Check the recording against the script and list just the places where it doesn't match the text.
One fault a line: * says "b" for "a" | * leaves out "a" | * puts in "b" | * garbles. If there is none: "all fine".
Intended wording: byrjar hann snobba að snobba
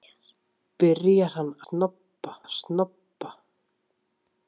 all fine